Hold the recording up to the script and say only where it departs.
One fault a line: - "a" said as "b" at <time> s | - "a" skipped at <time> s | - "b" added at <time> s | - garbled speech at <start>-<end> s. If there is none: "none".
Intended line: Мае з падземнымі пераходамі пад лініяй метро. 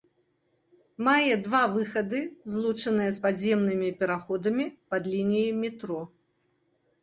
- "два выхады злучаныя" added at 1.5 s